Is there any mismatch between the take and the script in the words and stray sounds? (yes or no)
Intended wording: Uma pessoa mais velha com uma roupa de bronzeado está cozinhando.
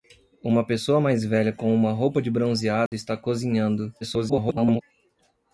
yes